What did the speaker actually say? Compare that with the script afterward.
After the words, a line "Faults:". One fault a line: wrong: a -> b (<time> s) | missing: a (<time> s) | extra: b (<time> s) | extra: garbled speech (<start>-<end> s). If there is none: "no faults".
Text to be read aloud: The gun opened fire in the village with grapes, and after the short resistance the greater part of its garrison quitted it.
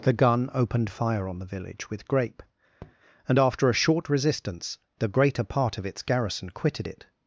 The gun opened fire on the village with grape, and after a short resistance the greater part of its garrison quitted it.
Faults:
wrong: in -> on (1.3 s)
wrong: grapes -> grape (2.1 s)
wrong: the -> a (3.7 s)